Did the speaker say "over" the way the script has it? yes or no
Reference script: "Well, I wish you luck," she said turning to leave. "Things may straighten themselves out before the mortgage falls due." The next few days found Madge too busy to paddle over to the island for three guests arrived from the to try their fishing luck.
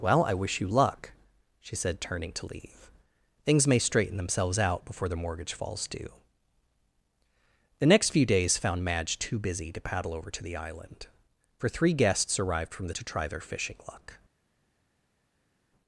yes